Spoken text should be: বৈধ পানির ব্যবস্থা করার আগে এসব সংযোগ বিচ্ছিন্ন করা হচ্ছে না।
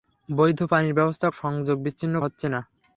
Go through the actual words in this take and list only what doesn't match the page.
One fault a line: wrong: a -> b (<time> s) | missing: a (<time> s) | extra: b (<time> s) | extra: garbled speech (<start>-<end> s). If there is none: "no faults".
missing: করার আগে এসব (1.3 s)
missing: করা (2.2 s)